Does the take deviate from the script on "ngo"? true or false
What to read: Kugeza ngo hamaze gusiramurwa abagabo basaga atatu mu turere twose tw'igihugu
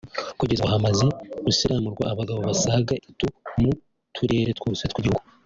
false